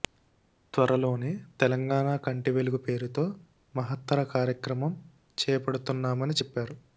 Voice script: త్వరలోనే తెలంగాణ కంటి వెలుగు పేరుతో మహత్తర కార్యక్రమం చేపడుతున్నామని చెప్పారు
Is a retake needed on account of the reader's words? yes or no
no